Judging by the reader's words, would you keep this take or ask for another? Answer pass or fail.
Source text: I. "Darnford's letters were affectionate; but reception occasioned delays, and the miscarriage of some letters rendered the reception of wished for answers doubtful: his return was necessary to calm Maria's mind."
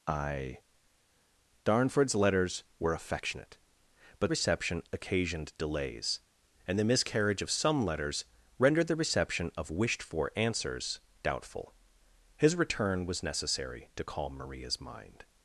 pass